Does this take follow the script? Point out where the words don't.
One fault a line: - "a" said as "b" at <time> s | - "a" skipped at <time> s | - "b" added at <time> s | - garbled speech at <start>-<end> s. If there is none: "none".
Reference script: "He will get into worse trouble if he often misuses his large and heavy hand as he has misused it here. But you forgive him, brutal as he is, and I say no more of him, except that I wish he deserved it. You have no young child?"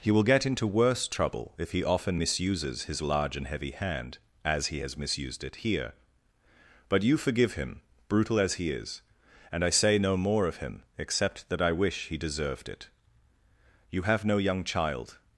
none